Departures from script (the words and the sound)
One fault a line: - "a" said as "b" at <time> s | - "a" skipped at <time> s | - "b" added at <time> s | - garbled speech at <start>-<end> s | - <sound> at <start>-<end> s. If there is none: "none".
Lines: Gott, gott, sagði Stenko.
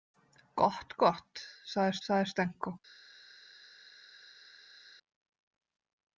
- "sagði" added at 2.1 s